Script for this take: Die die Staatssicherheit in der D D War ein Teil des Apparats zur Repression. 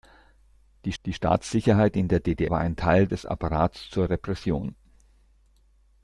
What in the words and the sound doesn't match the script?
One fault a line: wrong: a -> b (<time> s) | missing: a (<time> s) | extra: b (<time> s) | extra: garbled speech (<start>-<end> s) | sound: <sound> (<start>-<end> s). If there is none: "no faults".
no faults